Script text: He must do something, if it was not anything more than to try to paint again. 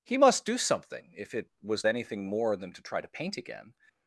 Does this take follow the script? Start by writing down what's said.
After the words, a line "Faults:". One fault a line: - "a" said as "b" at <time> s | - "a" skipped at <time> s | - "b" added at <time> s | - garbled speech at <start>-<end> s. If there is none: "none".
He must do something, if it was anything more than to try to paint again.
Faults:
- "not" skipped at 1.9 s